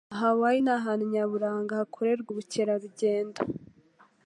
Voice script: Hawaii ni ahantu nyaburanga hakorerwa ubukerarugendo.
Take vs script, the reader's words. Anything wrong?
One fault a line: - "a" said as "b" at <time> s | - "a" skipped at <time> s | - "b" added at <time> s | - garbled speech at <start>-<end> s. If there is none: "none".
none